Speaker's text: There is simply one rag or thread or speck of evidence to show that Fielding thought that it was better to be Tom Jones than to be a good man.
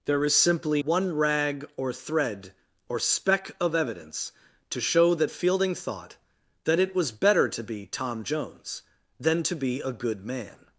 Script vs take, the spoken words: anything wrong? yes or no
no